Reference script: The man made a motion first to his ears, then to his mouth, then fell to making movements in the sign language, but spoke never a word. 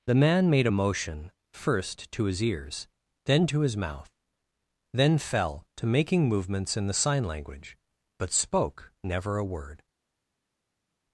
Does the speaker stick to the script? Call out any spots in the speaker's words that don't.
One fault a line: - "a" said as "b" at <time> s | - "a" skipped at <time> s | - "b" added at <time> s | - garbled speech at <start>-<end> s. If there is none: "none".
none